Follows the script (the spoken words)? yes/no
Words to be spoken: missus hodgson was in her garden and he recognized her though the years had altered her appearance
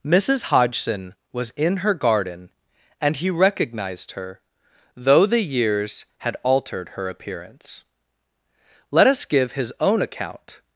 no